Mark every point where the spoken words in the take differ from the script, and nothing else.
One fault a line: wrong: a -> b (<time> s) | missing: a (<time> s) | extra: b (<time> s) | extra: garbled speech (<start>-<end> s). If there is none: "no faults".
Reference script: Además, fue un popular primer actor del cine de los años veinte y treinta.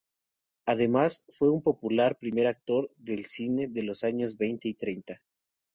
no faults